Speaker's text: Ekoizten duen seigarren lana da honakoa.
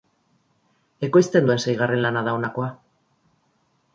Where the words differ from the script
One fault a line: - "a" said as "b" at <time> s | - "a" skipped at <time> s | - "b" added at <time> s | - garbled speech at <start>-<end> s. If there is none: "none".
none